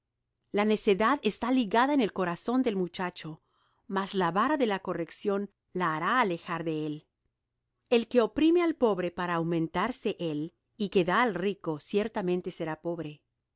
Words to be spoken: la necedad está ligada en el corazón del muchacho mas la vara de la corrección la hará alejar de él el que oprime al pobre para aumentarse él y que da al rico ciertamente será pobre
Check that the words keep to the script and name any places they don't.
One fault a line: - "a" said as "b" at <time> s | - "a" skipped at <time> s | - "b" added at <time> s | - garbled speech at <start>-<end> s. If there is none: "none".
none